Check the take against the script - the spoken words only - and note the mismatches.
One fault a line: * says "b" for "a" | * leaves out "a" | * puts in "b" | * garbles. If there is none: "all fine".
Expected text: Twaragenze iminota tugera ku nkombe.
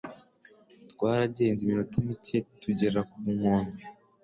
* puts in "mike"